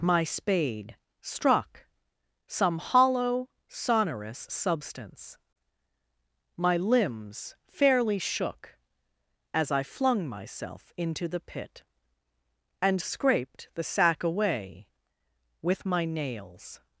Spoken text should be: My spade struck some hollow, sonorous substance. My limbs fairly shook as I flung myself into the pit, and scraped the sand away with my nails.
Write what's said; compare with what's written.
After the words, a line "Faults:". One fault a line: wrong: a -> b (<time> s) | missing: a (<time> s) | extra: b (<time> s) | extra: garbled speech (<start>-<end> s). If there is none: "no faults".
My spade struck some hollow, sonorous substance. My limbs fairly shook as I flung myself into the pit, and scraped the sack away with my nails.
Faults:
wrong: sand -> sack (13.8 s)